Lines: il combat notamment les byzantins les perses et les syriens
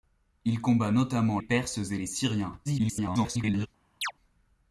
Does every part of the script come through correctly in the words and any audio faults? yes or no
no